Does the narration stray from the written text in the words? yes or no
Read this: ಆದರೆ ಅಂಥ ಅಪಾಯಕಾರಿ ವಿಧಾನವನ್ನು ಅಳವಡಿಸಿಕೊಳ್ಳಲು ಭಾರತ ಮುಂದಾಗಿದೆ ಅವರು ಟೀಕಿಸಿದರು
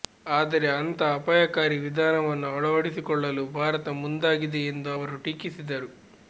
yes